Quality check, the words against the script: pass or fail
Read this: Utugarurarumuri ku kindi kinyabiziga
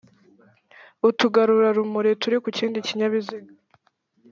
fail